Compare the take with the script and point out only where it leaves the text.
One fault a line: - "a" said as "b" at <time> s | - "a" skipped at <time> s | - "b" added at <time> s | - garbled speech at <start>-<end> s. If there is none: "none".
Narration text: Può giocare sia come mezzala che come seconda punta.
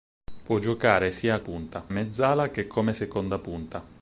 - "come" said as "punta" at 1.4 s